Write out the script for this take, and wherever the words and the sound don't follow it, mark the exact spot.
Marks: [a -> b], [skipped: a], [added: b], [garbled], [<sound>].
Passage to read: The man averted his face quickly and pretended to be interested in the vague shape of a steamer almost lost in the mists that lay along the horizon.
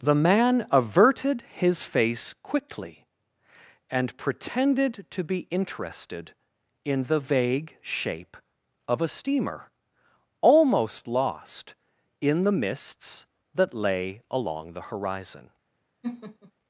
The man averted his face quickly and pretended to be interested in the vague shape of a steamer almost lost in the mists that lay along the horizon. [laugh]